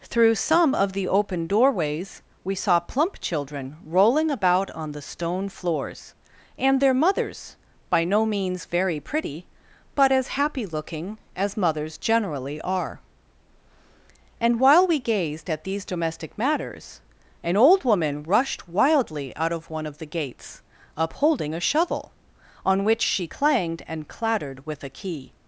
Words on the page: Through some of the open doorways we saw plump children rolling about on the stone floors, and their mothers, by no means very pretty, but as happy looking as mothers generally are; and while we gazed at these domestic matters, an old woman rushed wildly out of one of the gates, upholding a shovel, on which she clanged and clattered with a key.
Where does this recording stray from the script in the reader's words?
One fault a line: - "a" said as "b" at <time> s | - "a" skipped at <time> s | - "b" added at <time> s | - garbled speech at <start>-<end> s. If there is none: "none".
none